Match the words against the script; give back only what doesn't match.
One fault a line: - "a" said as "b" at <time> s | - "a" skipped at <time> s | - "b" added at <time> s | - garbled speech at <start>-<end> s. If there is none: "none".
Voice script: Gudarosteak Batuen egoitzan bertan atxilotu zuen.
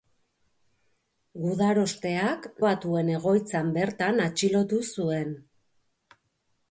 none